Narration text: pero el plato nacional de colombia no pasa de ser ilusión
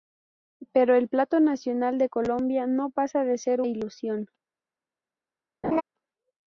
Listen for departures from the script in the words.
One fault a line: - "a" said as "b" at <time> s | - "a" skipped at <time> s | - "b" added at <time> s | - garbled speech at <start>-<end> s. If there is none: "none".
none